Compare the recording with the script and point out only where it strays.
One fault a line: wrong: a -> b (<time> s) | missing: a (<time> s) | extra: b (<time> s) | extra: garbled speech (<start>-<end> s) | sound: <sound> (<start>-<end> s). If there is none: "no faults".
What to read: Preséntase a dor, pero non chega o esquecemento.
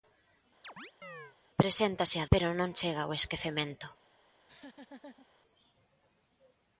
sound: chirp (0.6-1.4 s)
missing: dor (2.3 s)
sound: laugh (4.3-5.3 s)